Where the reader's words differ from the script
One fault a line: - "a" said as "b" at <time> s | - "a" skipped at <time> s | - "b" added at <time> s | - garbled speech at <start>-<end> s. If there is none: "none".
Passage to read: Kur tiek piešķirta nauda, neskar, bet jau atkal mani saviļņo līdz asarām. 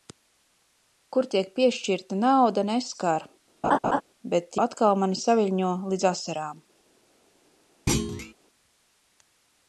- "jau" skipped at 4.6 s